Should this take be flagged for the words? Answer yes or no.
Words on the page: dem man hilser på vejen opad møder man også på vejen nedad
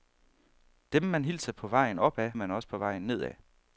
yes